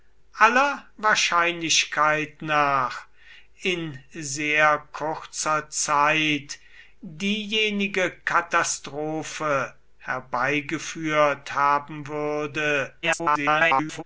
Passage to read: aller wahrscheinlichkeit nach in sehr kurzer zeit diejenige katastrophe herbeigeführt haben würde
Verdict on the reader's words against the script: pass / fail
fail